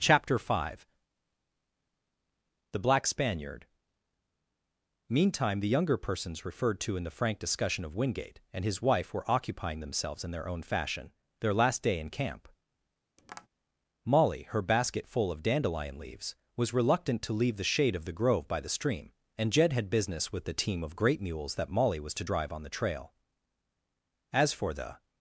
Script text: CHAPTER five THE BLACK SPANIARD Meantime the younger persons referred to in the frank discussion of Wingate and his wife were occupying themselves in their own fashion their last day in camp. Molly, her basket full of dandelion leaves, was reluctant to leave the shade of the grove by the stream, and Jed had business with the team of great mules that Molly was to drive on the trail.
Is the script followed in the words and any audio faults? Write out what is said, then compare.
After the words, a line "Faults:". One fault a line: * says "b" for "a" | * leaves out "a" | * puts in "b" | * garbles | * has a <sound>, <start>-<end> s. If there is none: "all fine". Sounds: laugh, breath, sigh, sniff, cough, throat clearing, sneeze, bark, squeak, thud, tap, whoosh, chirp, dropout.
CHAPTER five THE BLACK SPANIARD Meantime the younger persons referred to in the frank discussion of Wingate and his wife were occupying themselves in their own fashion their last day in camp. Molly, her basket full of dandelion leaves, was reluctant to leave the shade of the grove by the stream, and Jed had business with the team of great mules that Molly was to drive on the trail. As for the
Faults:
* has a tap, 13.2-13.5 s
* puts in "As for the"